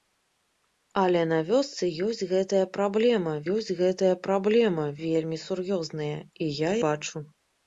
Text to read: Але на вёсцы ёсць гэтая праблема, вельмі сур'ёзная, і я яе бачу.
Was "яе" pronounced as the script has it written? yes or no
no